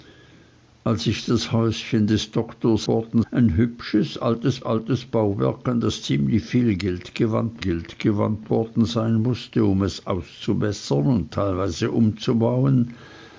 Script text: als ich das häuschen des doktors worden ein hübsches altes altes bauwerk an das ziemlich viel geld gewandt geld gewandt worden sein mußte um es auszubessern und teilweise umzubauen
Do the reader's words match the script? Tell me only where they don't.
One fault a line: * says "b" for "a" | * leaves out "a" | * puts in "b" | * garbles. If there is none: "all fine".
all fine